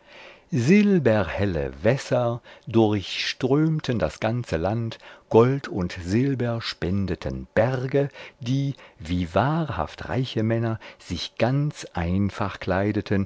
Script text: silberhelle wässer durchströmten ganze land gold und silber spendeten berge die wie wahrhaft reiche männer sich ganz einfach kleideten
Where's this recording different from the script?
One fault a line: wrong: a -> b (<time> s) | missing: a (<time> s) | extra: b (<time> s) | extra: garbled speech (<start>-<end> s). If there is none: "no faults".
extra: das (4.0 s)